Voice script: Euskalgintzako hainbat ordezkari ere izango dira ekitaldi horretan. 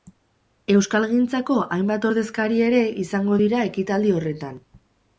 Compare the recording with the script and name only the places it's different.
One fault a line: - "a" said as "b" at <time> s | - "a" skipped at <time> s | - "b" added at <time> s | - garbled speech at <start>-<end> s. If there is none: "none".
none